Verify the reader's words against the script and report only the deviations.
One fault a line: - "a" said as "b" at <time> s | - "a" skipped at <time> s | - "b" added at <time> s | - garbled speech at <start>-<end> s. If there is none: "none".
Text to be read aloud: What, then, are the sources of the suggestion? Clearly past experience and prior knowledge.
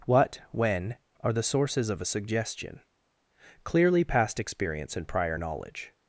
- "then" said as "when" at 0.5 s
- "the" said as "a" at 2.0 s